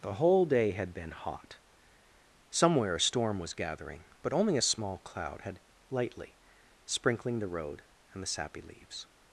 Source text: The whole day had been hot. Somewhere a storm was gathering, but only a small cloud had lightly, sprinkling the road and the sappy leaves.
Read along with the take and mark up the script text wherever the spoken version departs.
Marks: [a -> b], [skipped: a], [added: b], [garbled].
The whole day had been hot. Somewhere a storm was gathering, but only a small cloud had lightly, sprinkling the road and the sappy leaves.